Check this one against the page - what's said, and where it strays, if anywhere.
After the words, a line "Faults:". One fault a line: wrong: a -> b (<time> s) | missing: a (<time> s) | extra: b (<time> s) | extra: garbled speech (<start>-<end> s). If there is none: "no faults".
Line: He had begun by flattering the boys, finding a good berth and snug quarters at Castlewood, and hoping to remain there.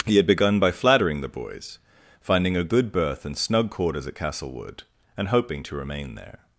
He had begun by flattering the boys, finding a good berth and snug quarters at Castlewood, and hoping to remain there.
Faults:
no faults